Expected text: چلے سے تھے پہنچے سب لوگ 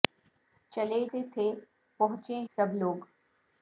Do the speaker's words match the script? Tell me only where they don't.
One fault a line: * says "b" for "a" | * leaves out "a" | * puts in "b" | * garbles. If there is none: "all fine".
all fine